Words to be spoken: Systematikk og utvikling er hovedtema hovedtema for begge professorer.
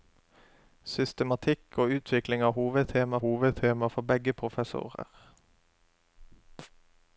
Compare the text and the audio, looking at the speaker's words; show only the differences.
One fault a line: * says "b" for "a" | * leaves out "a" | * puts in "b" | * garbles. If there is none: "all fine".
all fine